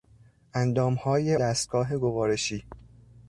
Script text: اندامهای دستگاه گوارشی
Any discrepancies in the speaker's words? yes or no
no